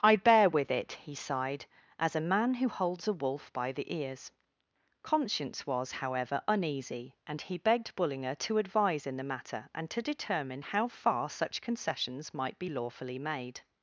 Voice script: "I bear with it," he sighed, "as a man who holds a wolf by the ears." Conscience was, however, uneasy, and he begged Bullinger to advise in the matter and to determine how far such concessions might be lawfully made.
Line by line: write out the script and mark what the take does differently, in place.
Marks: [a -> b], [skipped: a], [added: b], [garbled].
"I bear with it," he sighed, "as a man who holds a wolf by the ears." Conscience was, however, uneasy, and he begged Bullinger to advise in the matter and to determine how far such concessions might be lawfully made.